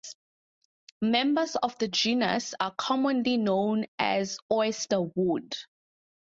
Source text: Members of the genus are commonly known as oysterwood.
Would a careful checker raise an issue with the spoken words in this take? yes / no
no